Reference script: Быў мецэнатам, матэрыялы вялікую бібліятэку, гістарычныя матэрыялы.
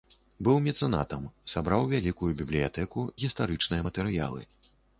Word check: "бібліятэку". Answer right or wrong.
right